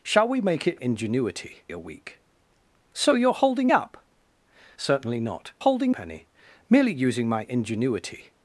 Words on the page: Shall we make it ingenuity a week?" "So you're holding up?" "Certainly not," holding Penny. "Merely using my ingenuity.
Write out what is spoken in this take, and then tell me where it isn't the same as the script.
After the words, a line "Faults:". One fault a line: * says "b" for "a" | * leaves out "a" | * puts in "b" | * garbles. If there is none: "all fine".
Shall we make it ingenuity a week?" "So you're holding up?" "Certainly not," holding Penny. "Merely using my ingenuity.
Faults:
all fine